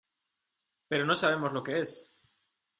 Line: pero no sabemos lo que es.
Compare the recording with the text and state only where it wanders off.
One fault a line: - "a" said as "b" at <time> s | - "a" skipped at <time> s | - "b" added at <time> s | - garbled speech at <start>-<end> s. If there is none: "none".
none